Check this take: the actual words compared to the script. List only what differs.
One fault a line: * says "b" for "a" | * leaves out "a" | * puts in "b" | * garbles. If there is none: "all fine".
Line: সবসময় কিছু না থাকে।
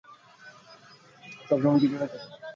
all fine